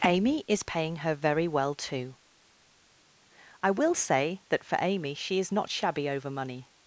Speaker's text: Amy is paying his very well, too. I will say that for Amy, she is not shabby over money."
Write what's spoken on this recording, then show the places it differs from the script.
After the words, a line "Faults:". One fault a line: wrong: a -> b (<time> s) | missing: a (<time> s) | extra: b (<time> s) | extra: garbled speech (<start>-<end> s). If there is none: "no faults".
Amy is paying her very well, too. I will say that for Amy, she is not shabby over money."
Faults:
wrong: his -> her (1.0 s)